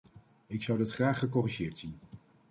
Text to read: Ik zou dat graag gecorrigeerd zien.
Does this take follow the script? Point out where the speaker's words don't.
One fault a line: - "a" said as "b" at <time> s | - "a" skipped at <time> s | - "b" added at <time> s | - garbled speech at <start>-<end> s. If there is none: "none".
none